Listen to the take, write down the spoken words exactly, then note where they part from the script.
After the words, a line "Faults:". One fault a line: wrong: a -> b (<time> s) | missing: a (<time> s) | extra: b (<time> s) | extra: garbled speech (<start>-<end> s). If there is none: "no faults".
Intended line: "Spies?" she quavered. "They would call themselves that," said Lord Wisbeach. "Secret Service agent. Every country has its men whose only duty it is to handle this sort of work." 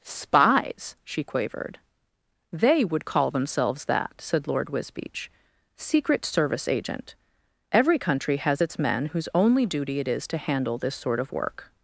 "Spies?" she quavered. "They would call themselves that," said Lord Wisbeach. "Secret Service agent. Every country has its men whose only duty it is to handle this sort of work."
Faults:
no faults